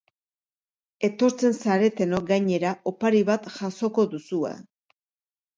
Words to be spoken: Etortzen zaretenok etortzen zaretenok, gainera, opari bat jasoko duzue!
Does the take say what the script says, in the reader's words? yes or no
no